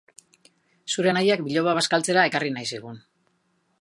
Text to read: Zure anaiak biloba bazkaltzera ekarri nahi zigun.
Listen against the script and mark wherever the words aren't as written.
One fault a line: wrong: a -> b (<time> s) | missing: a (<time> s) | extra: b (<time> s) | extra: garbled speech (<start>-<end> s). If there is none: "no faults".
no faults